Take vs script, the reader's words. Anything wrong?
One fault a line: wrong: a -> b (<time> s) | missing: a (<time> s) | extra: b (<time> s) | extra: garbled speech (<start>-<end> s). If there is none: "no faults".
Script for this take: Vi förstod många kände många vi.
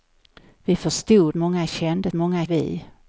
no faults